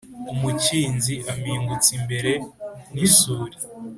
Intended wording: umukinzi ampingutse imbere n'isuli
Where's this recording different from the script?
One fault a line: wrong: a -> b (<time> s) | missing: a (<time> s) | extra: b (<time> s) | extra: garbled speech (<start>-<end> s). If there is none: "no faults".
no faults